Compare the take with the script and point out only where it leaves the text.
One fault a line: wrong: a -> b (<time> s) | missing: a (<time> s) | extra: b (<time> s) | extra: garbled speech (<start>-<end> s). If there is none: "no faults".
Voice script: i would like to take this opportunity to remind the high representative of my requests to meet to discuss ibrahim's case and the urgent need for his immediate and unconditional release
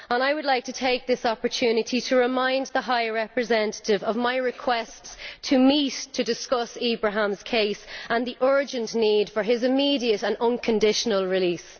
no faults